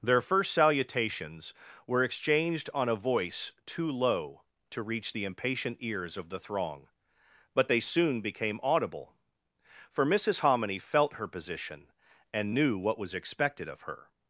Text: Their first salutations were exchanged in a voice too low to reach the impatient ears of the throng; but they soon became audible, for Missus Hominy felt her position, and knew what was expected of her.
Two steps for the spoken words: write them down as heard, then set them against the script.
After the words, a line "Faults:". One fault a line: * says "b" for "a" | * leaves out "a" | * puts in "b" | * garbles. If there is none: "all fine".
Their first salutations were exchanged on a voice too low to reach the impatient ears of the throng; but they soon became audible, for Missus Hominy felt her position, and knew what was expected of her.
Faults:
* says "on" for "in"